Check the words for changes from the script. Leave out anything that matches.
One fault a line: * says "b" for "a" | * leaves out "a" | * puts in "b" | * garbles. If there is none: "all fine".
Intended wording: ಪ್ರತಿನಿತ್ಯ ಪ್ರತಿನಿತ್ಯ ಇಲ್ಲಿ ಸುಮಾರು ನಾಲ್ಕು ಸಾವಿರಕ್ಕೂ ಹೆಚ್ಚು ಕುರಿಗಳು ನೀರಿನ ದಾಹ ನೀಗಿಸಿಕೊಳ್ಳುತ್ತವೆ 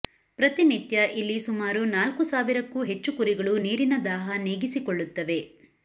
* leaves out "ಪ್ರತಿನಿತ್ಯ"